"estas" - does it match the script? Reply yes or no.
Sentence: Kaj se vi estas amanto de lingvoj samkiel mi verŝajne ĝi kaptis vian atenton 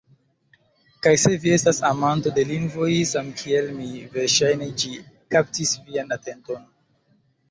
yes